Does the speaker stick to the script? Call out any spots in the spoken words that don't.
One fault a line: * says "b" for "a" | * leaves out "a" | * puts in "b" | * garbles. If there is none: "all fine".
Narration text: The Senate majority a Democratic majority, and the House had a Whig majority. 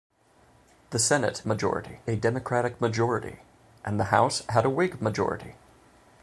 all fine